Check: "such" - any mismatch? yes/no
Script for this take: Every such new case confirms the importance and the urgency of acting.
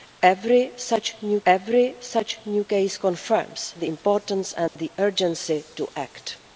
no